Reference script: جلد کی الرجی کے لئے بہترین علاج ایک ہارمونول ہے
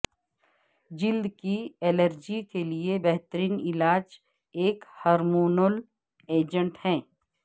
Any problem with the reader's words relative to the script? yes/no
yes